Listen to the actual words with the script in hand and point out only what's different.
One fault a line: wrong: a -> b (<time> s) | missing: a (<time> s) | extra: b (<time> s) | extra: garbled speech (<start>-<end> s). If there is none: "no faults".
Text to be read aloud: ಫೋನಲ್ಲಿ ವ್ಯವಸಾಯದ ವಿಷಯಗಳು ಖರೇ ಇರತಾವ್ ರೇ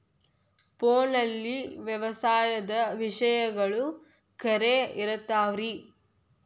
no faults